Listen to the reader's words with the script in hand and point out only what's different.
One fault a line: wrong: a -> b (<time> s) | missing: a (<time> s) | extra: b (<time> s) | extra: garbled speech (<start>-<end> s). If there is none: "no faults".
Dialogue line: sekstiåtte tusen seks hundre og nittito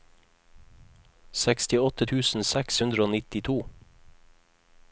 no faults